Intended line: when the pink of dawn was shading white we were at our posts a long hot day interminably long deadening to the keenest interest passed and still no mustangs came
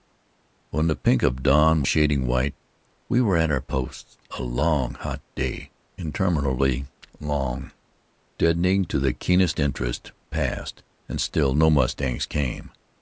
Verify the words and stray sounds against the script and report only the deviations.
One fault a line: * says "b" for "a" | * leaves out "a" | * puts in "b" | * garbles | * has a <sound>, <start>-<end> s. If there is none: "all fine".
* leaves out "was"